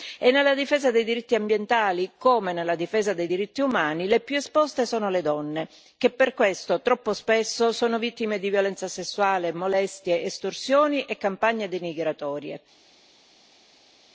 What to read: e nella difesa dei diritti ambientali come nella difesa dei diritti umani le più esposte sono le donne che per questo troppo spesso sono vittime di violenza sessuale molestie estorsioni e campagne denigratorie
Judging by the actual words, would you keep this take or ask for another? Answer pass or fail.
pass